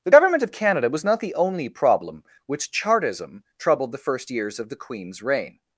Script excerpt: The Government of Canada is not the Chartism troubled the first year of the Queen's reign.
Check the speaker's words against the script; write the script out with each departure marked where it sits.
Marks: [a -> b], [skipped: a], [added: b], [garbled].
The Government of Canada [is -> was] not the [added: only problem which] Chartism troubled the first [year -> years] of the Queen's reign.